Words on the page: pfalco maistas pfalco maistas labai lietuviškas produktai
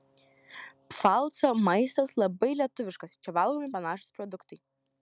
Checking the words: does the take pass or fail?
fail